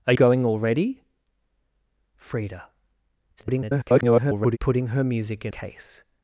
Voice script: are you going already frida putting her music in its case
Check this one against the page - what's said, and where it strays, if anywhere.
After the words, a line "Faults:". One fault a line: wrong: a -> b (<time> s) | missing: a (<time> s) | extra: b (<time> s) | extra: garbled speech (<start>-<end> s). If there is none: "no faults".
are going already frida [garbled] putting her music in case
Faults:
missing: you (0.1 s)
extra: garbled speech (3.4-4.6 s)
missing: its (5.5 s)